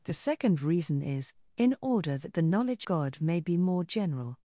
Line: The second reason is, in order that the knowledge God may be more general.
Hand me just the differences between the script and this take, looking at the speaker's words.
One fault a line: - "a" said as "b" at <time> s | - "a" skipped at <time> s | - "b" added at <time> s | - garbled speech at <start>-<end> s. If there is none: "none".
none